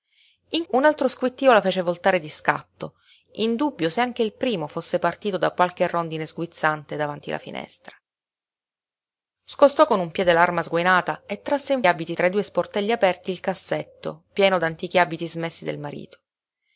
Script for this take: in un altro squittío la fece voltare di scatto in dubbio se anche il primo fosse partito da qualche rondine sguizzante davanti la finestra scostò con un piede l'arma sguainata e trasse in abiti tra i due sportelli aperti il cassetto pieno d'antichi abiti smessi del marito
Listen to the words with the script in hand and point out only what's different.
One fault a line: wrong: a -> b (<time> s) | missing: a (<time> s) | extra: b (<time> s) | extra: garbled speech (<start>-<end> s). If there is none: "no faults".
no faults